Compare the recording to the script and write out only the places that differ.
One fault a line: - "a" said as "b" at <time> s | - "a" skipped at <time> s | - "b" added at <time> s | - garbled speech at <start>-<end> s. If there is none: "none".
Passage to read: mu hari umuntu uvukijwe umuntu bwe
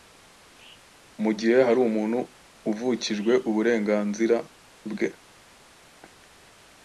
- "gihe" added at 1.4 s
- "umuntu" said as "uburenganzira" at 3.5 s